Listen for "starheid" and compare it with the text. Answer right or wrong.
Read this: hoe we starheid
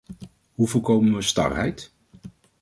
right